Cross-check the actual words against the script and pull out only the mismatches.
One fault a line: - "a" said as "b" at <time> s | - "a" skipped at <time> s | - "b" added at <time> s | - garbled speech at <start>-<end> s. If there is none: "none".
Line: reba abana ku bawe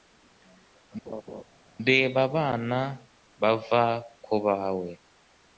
- "bava" added at 3.4 s